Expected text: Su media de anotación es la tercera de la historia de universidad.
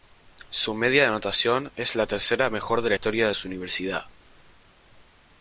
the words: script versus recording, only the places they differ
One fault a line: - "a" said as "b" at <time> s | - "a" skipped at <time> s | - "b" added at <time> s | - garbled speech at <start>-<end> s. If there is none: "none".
- "mejor" added at 2.5 s
- "su" added at 3.3 s